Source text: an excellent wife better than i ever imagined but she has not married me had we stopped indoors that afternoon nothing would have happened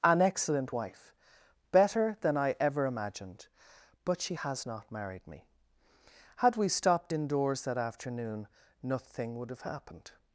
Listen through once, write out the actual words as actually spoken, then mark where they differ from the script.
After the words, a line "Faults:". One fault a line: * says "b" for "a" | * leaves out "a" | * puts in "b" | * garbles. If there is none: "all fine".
an excellent wife better than i ever imagined but she has not married me had we stopped indoors that afternoon nothing would have happened
Faults:
all fine